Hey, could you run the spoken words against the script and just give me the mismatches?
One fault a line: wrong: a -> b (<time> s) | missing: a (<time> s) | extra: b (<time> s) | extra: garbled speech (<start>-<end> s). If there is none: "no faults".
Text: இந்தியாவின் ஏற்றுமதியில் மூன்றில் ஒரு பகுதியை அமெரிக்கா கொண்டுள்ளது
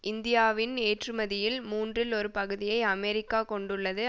no faults